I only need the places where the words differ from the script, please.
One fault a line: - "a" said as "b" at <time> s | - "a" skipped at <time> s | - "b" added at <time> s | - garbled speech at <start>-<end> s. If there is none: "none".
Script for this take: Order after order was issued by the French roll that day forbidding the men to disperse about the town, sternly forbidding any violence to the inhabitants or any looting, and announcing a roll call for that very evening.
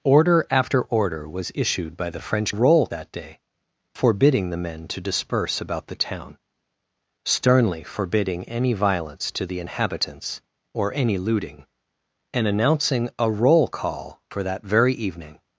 none